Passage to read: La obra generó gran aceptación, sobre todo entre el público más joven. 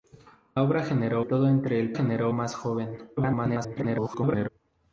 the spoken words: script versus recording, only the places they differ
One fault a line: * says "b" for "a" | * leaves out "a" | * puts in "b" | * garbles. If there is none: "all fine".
* leaves out "gran aceptación sobre"
* says "generó" for "público"
* garbles